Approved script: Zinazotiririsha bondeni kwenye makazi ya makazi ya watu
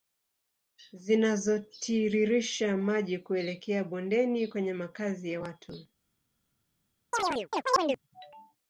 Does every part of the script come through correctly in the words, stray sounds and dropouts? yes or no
no